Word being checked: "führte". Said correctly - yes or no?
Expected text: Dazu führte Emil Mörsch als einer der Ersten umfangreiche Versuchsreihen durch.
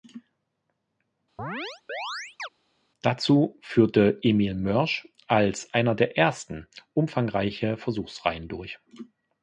yes